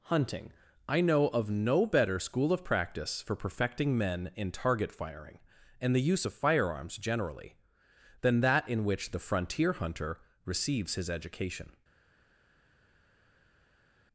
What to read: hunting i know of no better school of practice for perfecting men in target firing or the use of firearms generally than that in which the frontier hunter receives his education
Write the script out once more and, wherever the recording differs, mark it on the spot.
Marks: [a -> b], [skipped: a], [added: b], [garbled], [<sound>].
hunting i know of no better school of practice for perfecting men in target firing [or -> and] the use of firearms generally than that in which the frontier hunter receives his education